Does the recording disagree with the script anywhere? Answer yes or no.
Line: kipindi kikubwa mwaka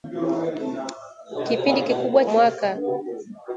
no